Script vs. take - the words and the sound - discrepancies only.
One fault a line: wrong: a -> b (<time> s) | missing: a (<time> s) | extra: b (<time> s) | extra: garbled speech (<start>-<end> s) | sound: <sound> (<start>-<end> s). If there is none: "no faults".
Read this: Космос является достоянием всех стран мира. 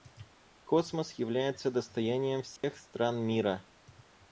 sound: dropout (2.6-2.6 s)